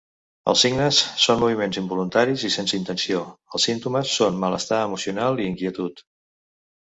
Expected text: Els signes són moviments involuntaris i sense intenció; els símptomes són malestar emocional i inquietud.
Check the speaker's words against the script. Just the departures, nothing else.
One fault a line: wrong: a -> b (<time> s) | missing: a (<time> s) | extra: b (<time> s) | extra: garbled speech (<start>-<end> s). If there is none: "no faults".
no faults